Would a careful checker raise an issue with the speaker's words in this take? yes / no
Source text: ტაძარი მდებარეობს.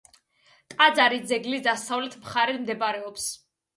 yes